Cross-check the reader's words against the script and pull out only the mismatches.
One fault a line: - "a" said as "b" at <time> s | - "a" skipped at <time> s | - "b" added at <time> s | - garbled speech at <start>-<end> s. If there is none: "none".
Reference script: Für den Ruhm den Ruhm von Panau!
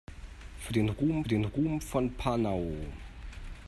none